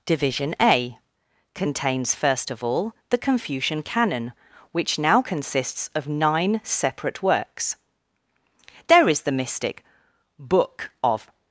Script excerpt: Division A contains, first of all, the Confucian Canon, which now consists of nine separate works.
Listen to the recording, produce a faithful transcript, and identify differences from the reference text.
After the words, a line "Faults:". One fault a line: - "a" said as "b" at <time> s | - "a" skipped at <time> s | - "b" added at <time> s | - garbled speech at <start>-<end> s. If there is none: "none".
Division A contains, first of all, the Confucian Canon, which now consists of nine separate works. There is the mystic Book of
Faults:
- "There is the mystic Book of" added at 8.9 s